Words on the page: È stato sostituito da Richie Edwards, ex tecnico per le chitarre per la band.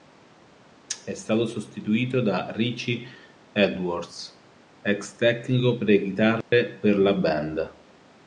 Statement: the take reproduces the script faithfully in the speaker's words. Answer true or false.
true